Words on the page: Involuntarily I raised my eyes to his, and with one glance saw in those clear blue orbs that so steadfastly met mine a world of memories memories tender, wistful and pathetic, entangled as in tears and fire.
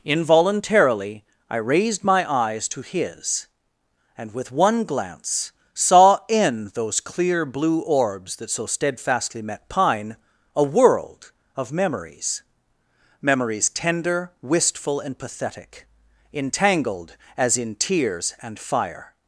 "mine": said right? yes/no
no